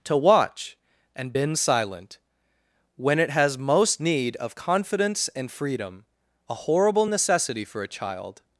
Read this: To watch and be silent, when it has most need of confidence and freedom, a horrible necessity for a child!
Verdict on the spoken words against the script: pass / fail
fail